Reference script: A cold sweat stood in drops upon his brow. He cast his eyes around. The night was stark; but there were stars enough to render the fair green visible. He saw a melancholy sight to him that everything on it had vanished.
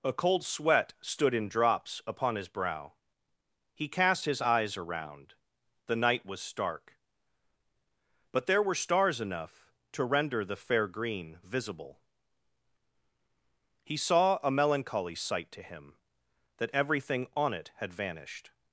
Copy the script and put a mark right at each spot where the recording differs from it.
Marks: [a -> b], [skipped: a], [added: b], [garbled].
A cold sweat stood in drops upon his brow. He cast his eyes around. The night was stark; but there were stars enough to render the fair green visible. He saw a melancholy sight to him that everything on it had vanished.